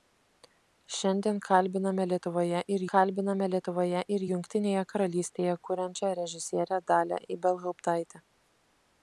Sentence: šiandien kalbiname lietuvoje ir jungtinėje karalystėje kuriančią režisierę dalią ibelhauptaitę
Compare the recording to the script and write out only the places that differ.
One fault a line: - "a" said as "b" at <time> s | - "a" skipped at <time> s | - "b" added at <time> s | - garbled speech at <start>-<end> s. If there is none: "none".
- "kalbiname lietuvoje ir" added at 2.9 s